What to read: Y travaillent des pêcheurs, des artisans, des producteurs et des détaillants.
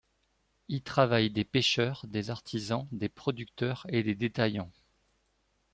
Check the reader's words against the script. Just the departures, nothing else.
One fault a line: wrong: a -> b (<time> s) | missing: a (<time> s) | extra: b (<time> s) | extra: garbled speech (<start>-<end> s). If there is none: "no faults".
no faults